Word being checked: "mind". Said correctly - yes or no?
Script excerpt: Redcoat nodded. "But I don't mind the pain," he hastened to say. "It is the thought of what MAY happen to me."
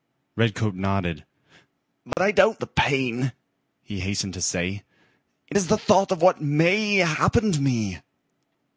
no